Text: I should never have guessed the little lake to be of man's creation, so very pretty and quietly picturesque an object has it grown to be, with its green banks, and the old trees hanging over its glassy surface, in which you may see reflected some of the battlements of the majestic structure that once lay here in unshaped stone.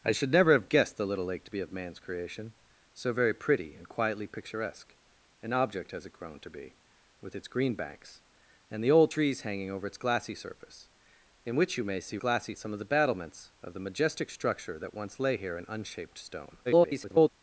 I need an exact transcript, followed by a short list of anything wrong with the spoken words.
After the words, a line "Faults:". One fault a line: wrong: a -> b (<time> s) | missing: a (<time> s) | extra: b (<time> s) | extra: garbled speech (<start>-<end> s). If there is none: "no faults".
I should never have guessed the little lake to be of man's creation, so very pretty and quietly picturesque an object has it grown to be, with its green banks, and the old trees hanging over its glassy surface, in which you may see glassy some of the battlements of the majestic structure that once lay here in unshaped stone. [garbled]
Faults:
wrong: reflected -> glassy (12.2 s)
extra: garbled speech (16.7-17.3 s)